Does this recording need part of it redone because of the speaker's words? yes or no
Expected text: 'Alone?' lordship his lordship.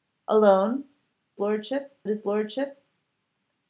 no